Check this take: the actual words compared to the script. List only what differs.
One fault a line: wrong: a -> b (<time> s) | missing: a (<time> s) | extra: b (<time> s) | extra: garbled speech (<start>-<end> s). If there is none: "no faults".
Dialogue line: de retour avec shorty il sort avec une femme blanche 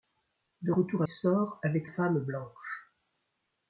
missing: avec shorty il (1.0 s)
missing: une (1.9 s)